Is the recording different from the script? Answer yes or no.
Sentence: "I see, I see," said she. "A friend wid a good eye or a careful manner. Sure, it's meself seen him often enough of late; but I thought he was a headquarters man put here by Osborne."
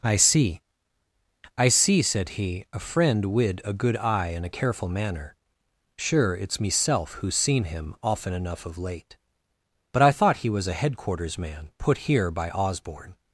yes